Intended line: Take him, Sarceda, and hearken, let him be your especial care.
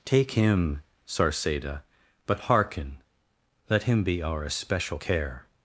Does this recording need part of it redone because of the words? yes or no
yes